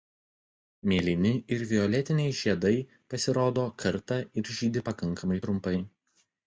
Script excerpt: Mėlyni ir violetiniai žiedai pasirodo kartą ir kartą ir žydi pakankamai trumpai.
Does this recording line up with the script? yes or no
no